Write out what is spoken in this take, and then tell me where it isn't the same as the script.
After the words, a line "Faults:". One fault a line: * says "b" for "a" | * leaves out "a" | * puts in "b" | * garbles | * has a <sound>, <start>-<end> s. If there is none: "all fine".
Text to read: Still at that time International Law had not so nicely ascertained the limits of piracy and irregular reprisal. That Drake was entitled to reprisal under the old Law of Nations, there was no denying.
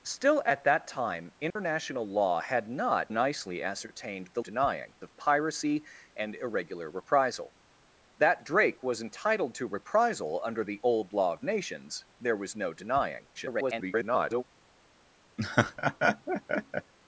Still at that time International Law had not nicely ascertained the denying of piracy and irregular reprisal. That Drake was entitled to reprisal under the old Law of Nations, there was no denying. [garbled]
Faults:
* has a dropout, 1.5-1.6 s
* leaves out "so"
* says "denying" for "limits"
* garbles
* has a laugh, 15.4-16.9 s